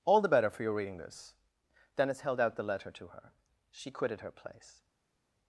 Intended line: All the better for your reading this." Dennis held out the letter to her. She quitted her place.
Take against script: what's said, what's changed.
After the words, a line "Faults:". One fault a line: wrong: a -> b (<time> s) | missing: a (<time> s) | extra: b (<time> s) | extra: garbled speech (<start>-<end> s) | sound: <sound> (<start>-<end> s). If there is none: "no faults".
All the better for your reading this." Dennis held out the letter to her. She quitted her place.
Faults:
no faults